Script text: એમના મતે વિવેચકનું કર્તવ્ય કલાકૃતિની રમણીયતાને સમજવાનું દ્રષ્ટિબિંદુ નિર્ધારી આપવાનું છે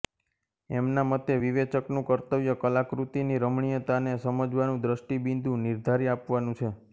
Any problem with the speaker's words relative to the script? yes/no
no